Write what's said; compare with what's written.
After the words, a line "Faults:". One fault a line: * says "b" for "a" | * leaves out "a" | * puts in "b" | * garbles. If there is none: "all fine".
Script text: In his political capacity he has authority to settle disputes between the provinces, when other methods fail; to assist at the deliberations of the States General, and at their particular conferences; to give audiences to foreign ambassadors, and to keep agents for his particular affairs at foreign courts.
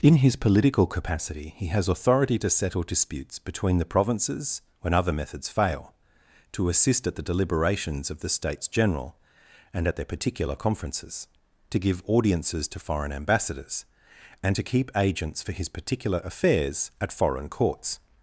In his political capacity he has authority to settle disputes between the provinces, when other methods fail; to assist at the deliberations of the States General, and at their particular conferences; to give audiences to foreign ambassadors, and to keep agents for his particular affairs at foreign courts.
Faults:
all fine